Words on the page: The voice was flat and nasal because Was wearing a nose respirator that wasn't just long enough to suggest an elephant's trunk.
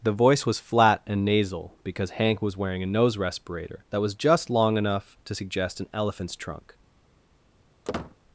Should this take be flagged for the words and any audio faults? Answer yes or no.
yes